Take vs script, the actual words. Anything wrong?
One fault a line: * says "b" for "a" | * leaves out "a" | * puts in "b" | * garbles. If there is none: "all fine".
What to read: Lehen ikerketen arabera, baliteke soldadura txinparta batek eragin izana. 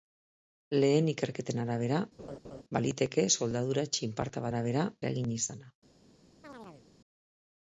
* says "arabera" for "batek"